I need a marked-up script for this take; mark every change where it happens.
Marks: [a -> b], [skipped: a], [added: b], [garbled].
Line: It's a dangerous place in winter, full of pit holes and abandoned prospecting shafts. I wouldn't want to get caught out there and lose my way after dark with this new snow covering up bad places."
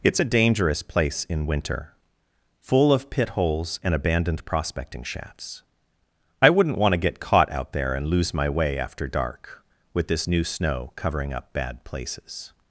It's a dangerous place in winter, full of pit holes and abandoned prospecting shafts. I wouldn't want to get caught out there and lose my way after dark with this new snow covering up bad places."